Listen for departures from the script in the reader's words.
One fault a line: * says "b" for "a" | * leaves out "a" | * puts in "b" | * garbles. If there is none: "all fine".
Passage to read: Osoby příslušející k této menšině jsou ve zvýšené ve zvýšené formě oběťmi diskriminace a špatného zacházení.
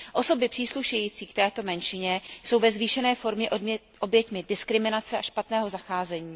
* leaves out "ve zvýšené"